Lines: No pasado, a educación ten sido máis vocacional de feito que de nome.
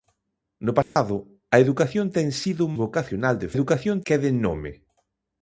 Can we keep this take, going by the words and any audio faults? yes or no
no